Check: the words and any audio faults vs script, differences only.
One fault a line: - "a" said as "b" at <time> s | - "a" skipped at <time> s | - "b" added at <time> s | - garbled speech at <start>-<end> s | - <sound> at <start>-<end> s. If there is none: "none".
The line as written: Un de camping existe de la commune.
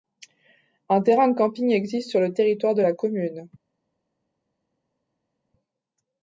- "terrain" added at 1.0 s
- "sur le territoire" added at 2.1 s